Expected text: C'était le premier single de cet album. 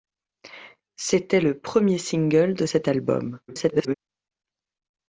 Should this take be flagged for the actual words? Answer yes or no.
yes